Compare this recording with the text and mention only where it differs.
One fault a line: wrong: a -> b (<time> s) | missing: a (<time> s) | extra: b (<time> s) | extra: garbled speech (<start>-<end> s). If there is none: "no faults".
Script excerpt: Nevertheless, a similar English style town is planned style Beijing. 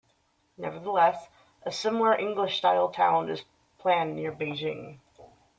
wrong: style -> near (4.1 s)